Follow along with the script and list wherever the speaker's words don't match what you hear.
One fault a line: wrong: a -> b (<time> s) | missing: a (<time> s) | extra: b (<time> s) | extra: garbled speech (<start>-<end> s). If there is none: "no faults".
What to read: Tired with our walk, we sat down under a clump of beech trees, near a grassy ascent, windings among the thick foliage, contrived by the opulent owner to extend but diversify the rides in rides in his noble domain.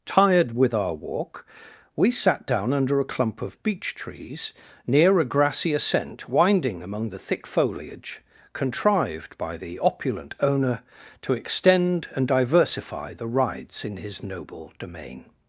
wrong: windings -> winding (6.3 s)
wrong: but -> and (12.2 s)
missing: rides in (14.0 s)